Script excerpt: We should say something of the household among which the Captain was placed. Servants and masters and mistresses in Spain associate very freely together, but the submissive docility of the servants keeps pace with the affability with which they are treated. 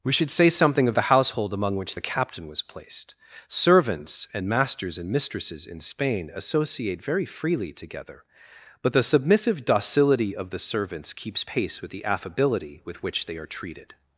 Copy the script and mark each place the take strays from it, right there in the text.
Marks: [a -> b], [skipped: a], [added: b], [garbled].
We should say something of the household among which the Captain was placed. Servants and masters and mistresses in Spain associate very freely together, but the submissive docility of the servants keeps pace with the affability with which they are treated.